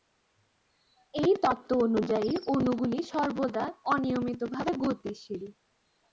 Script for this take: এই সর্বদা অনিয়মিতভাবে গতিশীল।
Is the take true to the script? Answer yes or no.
no